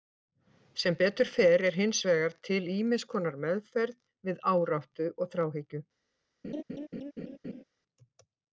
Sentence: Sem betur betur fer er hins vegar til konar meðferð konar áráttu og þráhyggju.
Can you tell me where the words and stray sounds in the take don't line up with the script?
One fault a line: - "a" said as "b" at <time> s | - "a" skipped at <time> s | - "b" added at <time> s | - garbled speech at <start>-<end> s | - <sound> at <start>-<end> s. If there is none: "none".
- "betur" skipped at 1.3 s
- "ýmiss" added at 2.7 s
- "konar" said as "við" at 4.3 s
- laugh at 6.4-7.6 s